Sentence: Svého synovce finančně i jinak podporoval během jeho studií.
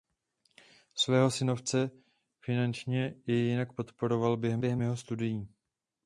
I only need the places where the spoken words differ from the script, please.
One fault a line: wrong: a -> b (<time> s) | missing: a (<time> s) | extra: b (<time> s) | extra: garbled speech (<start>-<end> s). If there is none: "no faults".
extra: během (4.6 s)